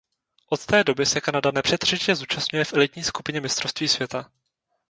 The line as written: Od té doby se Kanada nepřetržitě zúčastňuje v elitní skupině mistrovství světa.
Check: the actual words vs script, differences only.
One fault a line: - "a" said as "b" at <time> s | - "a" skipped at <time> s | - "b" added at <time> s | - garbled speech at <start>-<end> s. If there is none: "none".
none